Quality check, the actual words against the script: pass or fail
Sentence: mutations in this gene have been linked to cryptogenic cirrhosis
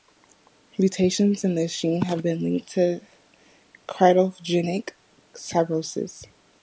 pass